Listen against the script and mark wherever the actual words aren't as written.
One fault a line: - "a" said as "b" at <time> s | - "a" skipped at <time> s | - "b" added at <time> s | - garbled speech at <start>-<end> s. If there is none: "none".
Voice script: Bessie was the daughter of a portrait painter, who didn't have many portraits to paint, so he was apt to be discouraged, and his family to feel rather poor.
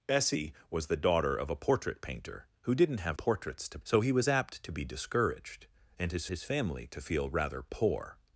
- "many" skipped at 3.2 s
- "paint" skipped at 3.8 s
- "his" added at 6.3 s